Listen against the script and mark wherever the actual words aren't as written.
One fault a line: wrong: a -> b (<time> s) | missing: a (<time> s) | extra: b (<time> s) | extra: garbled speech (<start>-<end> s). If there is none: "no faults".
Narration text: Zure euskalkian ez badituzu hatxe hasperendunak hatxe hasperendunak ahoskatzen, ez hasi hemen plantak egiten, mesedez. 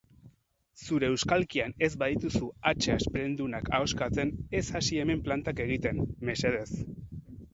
missing: hatxe hasperendunak (3.7 s)